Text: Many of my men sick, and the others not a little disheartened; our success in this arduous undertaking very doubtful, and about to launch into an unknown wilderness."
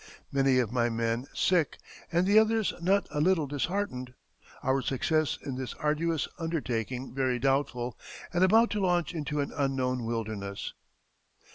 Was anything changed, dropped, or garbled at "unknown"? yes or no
no